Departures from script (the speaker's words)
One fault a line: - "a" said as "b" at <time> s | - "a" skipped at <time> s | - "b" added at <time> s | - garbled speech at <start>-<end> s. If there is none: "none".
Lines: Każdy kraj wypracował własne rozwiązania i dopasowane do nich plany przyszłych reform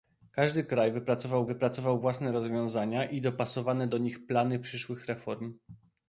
- "wypracował" added at 1.5 s